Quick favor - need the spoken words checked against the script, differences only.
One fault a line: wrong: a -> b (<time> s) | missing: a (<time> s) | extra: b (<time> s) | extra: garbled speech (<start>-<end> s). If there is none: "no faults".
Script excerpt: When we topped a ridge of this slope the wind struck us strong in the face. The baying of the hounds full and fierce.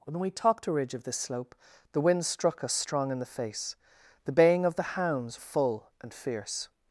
no faults